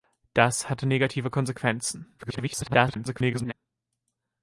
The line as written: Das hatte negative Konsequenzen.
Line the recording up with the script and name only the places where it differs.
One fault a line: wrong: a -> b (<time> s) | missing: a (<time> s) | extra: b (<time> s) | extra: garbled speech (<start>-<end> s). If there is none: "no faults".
extra: garbled speech (2.2-3.5 s)